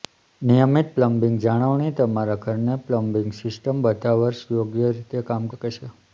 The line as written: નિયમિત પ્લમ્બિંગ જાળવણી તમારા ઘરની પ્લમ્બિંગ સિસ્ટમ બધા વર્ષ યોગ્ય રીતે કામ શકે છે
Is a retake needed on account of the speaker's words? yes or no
no